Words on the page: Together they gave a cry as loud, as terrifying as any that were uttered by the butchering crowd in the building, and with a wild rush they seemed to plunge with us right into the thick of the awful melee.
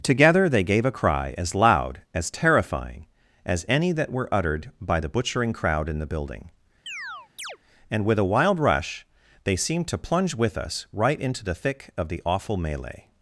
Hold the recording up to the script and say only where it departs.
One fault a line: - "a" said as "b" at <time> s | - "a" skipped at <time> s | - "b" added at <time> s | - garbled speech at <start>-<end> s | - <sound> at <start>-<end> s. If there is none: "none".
- chirp at 6.9-7.6 s